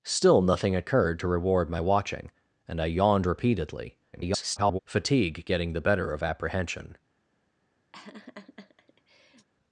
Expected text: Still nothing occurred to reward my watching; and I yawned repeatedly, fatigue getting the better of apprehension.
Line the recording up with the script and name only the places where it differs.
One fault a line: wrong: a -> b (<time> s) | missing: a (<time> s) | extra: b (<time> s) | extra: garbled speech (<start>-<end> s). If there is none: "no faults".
extra: garbled speech (4.1-4.8 s)